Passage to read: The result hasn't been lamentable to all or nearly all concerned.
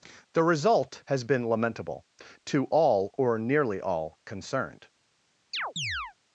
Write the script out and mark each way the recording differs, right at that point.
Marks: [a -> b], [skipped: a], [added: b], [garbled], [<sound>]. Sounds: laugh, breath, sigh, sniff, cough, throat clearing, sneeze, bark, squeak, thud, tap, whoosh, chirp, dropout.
The result [hasn't -> has] been lamentable to all or nearly all concerned. [chirp]